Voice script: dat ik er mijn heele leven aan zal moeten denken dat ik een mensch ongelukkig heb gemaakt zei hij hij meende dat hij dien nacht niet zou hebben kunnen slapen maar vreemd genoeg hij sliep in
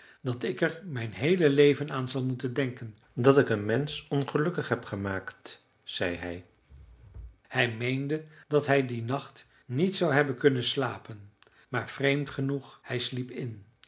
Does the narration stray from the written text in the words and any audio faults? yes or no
no